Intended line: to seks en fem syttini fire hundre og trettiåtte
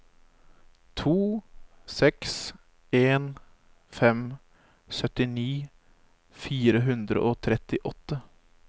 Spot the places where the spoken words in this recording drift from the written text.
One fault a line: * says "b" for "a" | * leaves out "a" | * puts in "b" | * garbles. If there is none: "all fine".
all fine